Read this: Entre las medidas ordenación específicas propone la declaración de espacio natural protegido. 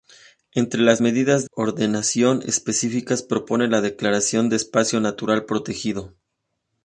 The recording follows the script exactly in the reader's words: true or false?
true